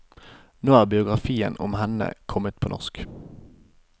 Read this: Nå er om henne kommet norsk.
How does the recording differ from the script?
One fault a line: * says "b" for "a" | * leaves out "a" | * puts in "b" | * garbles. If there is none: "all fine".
* puts in "biografien"
* puts in "på"